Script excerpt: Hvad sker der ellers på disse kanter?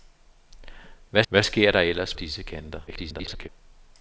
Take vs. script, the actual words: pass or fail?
fail